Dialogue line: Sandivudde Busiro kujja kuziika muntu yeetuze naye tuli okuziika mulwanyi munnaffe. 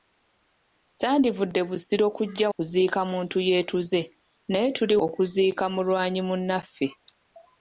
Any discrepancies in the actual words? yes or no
no